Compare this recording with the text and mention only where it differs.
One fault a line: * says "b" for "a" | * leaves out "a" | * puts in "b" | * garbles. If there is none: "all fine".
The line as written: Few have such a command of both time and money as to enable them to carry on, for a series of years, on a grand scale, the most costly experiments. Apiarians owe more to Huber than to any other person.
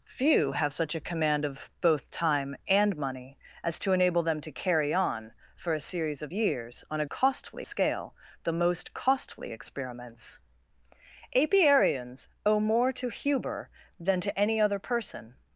* says "costly" for "grand"